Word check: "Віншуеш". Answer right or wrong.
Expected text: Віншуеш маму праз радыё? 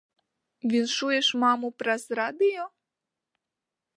right